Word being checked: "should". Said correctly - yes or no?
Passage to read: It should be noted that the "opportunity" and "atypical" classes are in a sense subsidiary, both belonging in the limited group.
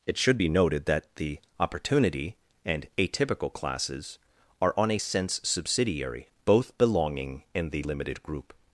yes